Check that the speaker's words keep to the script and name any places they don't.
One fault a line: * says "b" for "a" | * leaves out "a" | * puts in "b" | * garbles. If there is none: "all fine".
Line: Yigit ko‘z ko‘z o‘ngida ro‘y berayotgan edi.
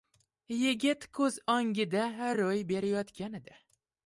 * leaves out "ko‘z"